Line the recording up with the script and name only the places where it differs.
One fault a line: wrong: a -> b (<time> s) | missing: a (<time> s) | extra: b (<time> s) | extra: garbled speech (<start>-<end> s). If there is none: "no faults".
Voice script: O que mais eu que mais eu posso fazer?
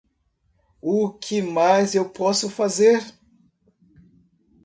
missing: que mais eu (2.1 s)